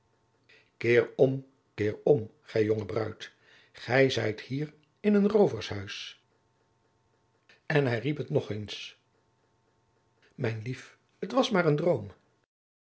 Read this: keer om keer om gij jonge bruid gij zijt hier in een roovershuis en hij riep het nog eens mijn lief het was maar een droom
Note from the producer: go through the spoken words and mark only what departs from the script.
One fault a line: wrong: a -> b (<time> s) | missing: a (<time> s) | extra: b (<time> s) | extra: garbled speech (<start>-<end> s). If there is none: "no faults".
no faults